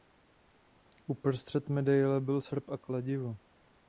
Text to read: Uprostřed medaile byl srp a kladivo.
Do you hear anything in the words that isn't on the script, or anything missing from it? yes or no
no